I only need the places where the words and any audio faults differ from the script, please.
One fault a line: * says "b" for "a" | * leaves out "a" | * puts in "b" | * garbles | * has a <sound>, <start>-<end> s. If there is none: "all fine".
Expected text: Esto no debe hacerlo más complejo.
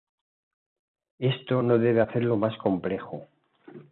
all fine